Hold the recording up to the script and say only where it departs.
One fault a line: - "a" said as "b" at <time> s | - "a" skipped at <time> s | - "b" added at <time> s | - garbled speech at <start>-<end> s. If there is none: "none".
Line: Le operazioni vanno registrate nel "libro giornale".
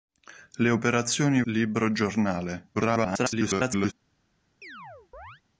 - "vanno registrate nel" skipped at 1.4 s
- garbled speech at 2.7-3.9 s